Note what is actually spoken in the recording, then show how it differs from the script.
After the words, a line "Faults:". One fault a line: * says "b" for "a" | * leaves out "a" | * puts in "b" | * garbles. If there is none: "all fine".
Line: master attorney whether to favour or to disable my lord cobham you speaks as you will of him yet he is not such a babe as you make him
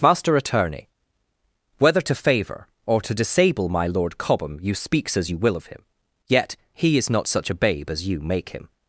master attorney whether to favour or to disable my lord cobham you speaks as you will of him yet he is not such a babe as you make him
Faults:
all fine